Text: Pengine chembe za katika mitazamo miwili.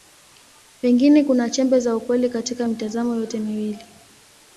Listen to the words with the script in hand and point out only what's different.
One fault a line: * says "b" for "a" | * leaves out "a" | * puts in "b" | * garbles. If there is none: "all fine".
* puts in "kuna"
* puts in "ukweli"
* puts in "yote"